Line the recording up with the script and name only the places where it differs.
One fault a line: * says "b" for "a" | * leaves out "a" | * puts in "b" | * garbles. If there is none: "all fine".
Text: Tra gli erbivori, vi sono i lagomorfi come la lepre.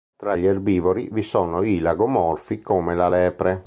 all fine